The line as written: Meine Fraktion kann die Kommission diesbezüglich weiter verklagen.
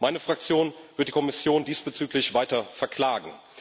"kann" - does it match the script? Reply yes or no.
no